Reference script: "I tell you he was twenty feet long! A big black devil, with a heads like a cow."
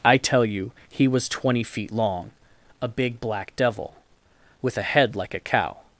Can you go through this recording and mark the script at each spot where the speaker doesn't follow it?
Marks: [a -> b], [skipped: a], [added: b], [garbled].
"I tell you he was twenty feet long! A big black devil, with a [heads -> head] like a cow."